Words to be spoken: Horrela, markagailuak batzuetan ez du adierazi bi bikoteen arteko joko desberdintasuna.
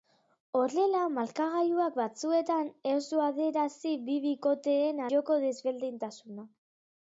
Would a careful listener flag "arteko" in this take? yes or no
yes